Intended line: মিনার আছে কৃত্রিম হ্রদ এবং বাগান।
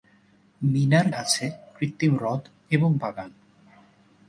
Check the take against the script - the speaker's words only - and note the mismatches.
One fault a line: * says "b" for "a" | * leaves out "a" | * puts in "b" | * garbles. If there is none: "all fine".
all fine